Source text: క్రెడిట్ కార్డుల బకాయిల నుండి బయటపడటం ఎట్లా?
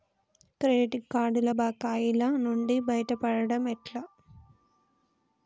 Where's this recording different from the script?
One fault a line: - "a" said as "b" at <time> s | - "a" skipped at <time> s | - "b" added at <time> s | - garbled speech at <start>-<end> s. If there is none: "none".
none